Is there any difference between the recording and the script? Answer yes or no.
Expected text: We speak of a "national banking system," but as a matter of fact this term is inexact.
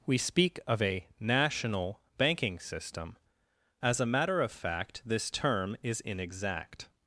yes